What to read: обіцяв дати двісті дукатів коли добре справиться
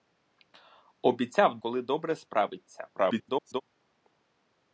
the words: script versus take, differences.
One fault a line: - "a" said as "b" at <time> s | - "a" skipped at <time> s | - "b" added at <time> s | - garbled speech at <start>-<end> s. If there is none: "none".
- "дати двісті дукатів" skipped at 1.6 s
- garbled speech at 3.0-3.6 s